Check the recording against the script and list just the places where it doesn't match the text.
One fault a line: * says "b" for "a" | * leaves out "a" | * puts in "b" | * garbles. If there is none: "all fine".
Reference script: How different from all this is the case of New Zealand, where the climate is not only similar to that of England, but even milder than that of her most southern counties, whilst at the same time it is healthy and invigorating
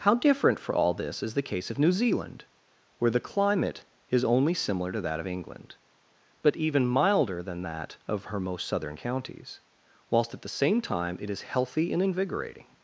* says "for" for "from"
* leaves out "not"